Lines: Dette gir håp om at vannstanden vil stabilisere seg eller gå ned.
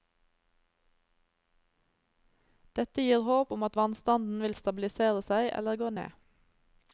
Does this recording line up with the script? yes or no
yes